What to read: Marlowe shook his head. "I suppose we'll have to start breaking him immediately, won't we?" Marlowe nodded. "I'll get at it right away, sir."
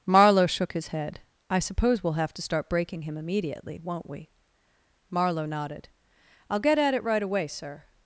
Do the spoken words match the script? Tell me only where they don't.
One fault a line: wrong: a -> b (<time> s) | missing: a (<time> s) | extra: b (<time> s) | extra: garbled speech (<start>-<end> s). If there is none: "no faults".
no faults